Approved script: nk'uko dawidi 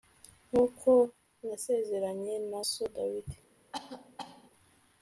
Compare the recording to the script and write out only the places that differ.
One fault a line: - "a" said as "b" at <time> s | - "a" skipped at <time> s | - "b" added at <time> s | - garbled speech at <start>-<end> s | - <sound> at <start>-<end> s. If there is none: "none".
- "nasezeranye na so" added at 1.5 s
- cough at 3.7-4.5 s